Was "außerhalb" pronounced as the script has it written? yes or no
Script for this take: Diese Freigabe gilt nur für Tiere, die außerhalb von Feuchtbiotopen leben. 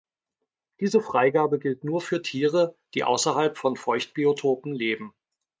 yes